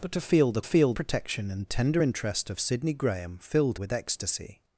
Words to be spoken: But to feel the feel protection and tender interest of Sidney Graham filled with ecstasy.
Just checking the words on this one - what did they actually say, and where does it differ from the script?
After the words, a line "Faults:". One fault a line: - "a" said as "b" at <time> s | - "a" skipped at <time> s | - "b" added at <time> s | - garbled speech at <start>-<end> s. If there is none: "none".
But to feel the feel protection and tender interest of Sidney Graham filled with ecstasy.
Faults:
none